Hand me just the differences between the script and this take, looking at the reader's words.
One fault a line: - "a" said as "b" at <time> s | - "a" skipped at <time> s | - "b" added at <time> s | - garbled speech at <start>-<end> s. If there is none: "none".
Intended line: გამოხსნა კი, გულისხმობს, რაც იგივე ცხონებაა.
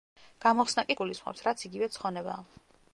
none